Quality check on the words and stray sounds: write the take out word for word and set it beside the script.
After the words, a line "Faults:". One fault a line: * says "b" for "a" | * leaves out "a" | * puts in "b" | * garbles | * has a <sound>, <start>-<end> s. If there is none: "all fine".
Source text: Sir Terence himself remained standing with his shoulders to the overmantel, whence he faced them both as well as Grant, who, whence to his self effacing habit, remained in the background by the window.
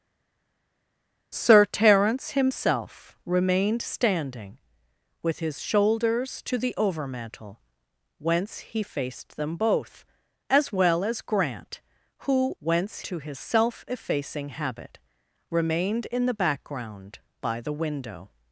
Sir Terence himself remained standing with his shoulders to the overmantel, whence he faced them both as well as Grant, who, whence to his self effacing habit, remained in the background by the window.
Faults:
all fine